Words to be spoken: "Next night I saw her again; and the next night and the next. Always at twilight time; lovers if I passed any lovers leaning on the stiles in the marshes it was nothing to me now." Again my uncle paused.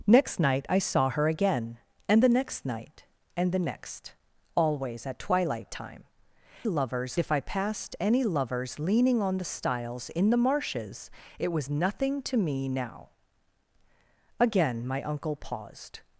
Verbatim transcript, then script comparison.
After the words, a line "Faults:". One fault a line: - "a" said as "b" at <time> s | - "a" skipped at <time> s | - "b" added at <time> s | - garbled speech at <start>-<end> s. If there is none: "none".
"Next night I saw her again; and the next night and the next. Always at twilight time; lovers if I passed any lovers leaning on the stiles in the marshes it was nothing to me now." Again my uncle paused.
Faults:
none